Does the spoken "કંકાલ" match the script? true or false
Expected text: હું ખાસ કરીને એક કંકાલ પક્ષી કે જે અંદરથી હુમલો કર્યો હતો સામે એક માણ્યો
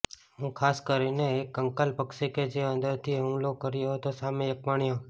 true